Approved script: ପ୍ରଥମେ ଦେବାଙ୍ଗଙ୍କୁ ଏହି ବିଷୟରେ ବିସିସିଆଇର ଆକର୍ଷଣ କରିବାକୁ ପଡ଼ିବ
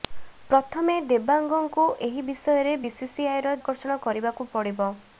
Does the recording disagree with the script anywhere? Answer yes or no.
no